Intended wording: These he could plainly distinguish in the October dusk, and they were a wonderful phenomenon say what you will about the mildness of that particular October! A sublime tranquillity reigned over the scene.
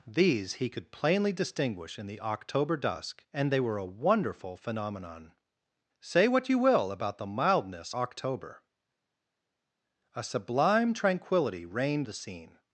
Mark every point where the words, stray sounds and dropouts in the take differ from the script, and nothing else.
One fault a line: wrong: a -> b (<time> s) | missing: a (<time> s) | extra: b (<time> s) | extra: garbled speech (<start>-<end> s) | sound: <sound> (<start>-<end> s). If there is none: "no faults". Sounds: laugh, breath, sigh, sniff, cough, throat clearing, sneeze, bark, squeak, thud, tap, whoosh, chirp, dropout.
missing: of that particular (7.9 s)
missing: over (12.1 s)